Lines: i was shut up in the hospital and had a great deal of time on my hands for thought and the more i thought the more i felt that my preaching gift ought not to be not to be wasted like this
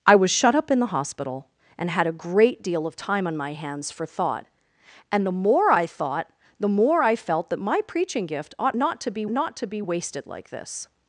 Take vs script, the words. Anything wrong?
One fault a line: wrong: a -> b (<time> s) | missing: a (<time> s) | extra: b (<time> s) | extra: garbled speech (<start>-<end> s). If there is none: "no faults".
no faults